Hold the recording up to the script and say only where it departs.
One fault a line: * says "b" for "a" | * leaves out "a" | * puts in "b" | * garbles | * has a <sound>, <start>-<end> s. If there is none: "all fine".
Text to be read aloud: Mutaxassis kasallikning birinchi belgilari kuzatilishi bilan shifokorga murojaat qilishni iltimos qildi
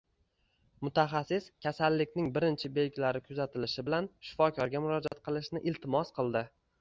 * has a dropout, 5.1-5.1 s